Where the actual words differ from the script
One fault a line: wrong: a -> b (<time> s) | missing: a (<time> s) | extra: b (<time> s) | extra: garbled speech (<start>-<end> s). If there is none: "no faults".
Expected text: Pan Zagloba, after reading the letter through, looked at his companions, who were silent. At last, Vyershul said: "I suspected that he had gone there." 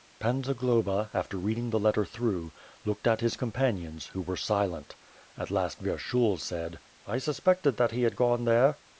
no faults